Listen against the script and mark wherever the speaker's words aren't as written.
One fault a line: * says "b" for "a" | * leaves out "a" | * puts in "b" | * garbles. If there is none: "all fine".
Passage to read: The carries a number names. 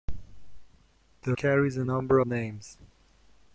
all fine